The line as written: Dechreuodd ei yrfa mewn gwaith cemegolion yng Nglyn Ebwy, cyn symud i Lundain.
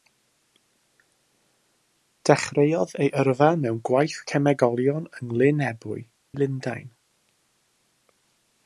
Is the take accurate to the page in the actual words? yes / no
no